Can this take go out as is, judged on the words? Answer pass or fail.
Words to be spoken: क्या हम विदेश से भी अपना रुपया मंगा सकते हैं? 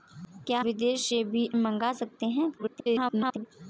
fail